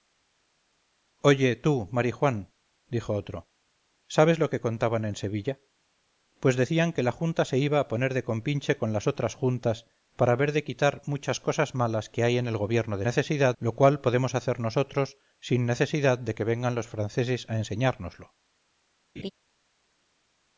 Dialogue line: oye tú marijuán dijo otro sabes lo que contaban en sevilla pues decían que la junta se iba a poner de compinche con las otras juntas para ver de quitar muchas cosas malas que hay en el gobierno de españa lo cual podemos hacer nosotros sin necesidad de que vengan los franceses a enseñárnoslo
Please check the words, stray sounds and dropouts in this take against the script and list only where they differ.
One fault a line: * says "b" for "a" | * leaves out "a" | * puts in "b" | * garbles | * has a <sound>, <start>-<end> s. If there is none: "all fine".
* says "necesidad" for "españa"
* has a laugh, 19.2-19.3 s